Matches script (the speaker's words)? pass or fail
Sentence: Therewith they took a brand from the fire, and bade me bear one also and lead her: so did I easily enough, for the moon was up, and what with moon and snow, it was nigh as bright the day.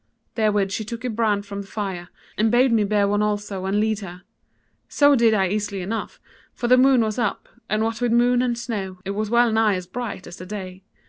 fail